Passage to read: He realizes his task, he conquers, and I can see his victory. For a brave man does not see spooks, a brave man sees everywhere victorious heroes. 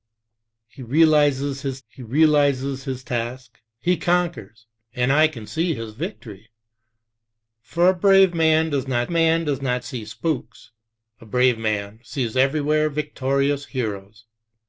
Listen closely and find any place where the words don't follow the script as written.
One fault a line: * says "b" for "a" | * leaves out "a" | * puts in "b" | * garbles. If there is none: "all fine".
* puts in "he realizes his"
* puts in "man does not"